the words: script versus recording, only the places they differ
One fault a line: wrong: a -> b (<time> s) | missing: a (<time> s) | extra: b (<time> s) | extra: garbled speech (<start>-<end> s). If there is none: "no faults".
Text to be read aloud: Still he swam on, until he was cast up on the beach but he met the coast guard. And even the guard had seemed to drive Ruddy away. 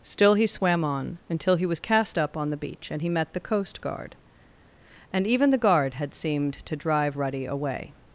wrong: but -> and (2.9 s)